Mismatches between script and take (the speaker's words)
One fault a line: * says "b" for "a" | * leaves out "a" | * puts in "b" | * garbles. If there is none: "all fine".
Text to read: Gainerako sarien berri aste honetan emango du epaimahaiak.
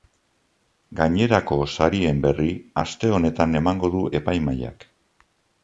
all fine